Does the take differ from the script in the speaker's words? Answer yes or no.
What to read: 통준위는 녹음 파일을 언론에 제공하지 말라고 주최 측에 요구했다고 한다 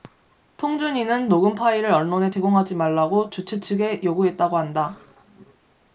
no